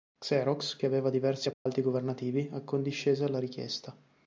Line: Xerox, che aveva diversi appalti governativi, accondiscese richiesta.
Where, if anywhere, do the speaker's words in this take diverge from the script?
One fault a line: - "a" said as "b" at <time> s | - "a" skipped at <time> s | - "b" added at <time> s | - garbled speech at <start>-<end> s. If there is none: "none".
- "alla" added at 3.2 s